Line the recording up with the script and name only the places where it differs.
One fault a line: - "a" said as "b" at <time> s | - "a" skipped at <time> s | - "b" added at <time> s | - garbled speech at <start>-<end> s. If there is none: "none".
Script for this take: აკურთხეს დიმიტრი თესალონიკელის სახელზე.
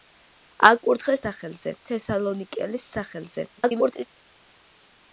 - "დიმიტრი" said as "სახელზე" at 1.3 s
- garbled speech at 3.6-4.1 s